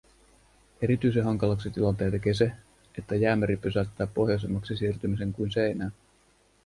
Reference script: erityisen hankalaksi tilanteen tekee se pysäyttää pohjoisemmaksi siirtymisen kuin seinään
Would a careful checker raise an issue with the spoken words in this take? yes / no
yes